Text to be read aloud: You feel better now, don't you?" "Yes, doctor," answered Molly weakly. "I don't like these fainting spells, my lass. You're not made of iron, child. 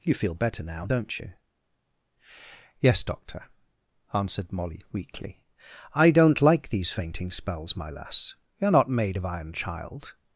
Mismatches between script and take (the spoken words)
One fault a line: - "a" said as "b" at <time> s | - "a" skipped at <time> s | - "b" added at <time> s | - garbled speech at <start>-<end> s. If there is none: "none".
none